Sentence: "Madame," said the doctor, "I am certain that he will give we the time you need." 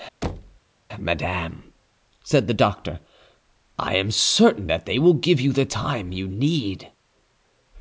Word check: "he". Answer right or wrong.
wrong